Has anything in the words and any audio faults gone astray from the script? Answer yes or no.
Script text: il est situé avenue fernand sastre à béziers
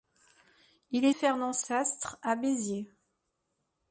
yes